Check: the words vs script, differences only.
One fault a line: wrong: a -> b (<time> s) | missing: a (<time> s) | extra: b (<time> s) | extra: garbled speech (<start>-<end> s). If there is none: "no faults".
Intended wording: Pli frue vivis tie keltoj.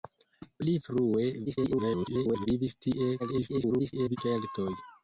extra: garbled speech (1.5-2.5 s)
extra: garbled speech (3.2-4.2 s)